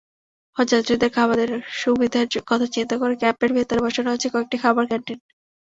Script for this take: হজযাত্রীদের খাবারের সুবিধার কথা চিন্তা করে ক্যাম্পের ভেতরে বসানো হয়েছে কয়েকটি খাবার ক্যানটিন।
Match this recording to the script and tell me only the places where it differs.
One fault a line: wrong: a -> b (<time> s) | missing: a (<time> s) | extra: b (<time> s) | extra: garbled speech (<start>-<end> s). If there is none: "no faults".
no faults